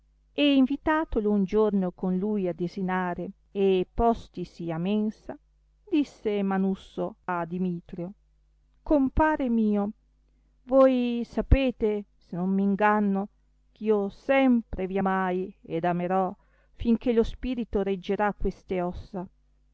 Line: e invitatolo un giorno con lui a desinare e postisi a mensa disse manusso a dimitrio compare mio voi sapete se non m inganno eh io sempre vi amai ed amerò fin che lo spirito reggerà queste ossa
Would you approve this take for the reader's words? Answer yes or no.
yes